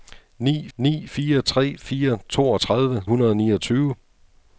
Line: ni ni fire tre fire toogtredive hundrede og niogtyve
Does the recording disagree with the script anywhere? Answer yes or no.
no